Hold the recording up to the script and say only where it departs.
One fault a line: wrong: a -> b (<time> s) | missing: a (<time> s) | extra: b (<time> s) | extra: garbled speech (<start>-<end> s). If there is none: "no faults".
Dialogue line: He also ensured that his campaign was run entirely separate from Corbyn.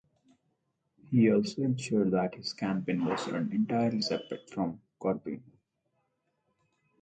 no faults